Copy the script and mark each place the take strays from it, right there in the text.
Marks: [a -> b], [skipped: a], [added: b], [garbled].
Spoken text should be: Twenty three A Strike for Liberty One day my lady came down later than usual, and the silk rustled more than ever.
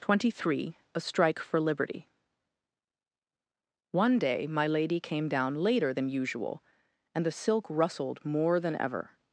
Twenty three A Strike for Liberty One day my lady came down later than usual, and the silk rustled more than ever.